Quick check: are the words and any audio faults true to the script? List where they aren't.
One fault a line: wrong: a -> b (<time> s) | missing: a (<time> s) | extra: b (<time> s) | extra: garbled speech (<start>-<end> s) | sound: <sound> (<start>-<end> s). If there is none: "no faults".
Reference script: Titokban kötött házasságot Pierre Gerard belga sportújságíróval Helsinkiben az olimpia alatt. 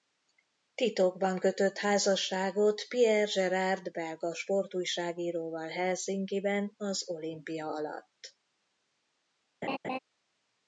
sound: laugh (9.6-10.0 s)